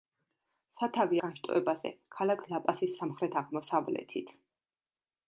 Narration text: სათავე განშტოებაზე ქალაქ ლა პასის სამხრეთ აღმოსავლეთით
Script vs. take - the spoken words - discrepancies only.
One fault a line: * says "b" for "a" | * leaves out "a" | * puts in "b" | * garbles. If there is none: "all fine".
all fine